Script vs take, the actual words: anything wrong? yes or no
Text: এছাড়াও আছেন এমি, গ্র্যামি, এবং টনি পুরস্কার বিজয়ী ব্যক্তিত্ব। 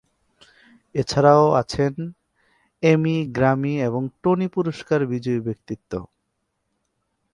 no